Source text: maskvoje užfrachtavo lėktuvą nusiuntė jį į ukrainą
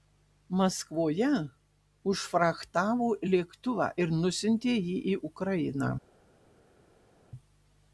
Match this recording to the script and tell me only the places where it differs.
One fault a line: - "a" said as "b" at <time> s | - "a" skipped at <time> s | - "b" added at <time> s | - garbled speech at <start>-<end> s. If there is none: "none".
- "ir" added at 4.0 s